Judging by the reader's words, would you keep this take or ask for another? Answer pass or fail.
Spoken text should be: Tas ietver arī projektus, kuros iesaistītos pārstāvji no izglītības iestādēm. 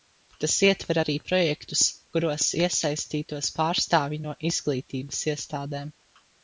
pass